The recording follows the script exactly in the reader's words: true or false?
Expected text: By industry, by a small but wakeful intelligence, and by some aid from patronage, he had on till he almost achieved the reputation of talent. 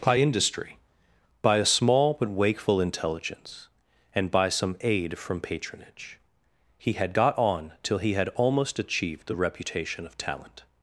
false